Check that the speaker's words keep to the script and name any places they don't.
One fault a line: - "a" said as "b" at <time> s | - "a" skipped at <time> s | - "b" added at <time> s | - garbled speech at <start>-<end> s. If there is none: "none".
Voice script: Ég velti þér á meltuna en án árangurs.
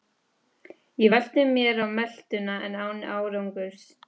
- "þér" said as "mér" at 1.4 s